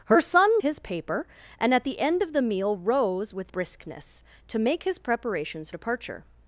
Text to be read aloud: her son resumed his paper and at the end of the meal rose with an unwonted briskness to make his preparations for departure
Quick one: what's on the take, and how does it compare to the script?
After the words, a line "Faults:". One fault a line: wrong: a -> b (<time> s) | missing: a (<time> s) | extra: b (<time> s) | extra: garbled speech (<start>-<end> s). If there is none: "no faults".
her son his paper and at the end of the meal rose with briskness to make his preparations departure
Faults:
missing: resumed (0.5 s)
missing: an unwonted (3.5 s)
missing: for (5.7 s)